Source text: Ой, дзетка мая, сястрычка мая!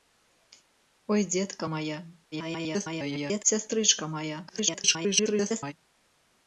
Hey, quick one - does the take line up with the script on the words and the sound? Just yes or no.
no